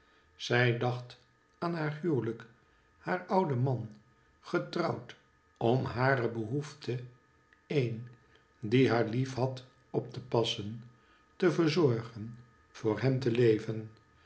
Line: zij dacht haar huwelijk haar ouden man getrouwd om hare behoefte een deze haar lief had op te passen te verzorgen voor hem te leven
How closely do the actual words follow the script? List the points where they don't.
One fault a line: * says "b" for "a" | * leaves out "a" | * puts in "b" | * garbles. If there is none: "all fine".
* puts in "aan"
* says "die" for "deze"